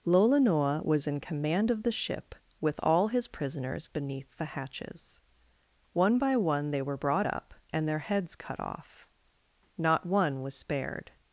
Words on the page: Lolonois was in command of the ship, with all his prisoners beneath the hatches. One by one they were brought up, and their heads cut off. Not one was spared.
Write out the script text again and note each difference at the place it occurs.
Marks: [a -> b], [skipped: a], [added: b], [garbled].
Lolonois was in command of the ship, with all his prisoners beneath the hatches. One by one they were brought up, and their heads cut off. Not one was spared.